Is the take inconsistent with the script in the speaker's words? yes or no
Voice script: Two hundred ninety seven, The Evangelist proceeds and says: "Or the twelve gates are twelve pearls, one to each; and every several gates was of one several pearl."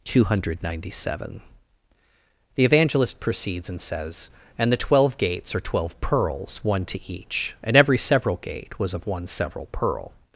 yes